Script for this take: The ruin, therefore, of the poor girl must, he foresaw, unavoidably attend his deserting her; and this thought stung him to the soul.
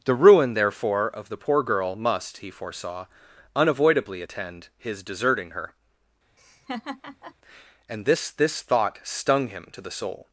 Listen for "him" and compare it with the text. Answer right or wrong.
right